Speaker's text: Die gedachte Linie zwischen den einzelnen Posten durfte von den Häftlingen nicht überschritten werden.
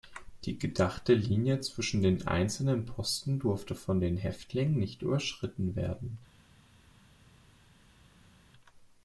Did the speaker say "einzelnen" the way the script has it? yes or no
yes